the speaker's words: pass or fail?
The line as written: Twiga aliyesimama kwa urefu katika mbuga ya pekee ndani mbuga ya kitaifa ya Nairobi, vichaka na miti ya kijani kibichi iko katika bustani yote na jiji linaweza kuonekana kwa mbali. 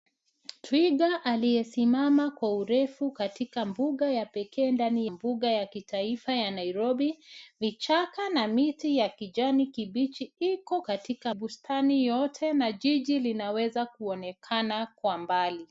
pass